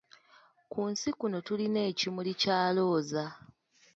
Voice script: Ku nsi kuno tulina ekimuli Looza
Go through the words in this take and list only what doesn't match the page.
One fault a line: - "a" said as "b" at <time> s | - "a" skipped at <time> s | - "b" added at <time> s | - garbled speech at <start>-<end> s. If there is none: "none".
- "kya" added at 2.4 s